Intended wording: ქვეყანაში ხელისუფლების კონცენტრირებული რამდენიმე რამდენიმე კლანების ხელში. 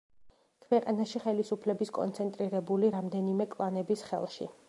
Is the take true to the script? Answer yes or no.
no